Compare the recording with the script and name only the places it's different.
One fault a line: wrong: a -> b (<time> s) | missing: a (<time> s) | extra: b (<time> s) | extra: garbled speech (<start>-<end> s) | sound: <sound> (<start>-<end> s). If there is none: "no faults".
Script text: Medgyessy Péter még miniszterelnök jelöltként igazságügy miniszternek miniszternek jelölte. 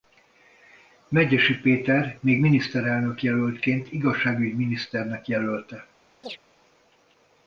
missing: miniszternek (5.3 s)
sound: chirp (6.2-6.4 s)